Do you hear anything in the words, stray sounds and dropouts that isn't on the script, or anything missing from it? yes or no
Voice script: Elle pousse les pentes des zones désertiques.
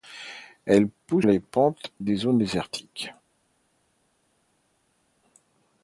no